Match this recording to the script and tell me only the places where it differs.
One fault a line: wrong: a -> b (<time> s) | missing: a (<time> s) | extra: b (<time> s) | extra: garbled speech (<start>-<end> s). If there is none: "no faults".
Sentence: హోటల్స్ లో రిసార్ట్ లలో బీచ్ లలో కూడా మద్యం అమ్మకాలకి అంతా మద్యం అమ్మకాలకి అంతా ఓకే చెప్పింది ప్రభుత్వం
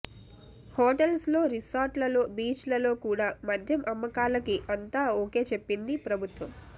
missing: మద్యం అమ్మకాలకి అంతా (5.0 s)